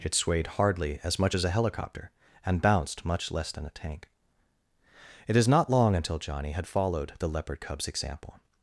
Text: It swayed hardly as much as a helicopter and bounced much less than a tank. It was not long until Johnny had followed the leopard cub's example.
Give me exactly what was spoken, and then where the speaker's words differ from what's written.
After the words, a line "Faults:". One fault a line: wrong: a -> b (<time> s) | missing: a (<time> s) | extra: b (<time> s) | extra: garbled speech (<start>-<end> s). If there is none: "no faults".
It swayed hardly as much as a helicopter and bounced much less than a tank. It is not long until Johnny had followed the leopard cub's example.
Faults:
wrong: was -> is (5.3 s)